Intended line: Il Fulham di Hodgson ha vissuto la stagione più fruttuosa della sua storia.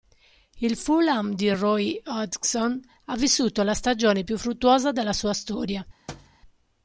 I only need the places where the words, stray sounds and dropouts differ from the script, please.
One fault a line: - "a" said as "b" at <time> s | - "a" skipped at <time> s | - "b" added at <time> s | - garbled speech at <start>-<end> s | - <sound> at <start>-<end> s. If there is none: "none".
- "Roy" added at 1.5 s
- thud at 6.1-6.4 s